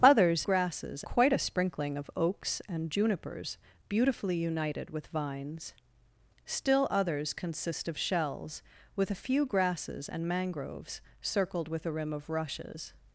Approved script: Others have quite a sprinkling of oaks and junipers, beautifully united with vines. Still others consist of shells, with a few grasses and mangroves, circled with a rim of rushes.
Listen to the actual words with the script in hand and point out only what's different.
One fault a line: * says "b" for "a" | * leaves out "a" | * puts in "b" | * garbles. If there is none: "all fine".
* says "grasses" for "have"